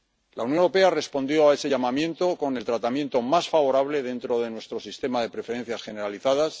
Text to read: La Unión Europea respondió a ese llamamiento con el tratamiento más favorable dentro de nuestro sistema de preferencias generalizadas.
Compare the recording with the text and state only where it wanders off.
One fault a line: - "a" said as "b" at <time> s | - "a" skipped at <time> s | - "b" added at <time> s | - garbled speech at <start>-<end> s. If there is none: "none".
none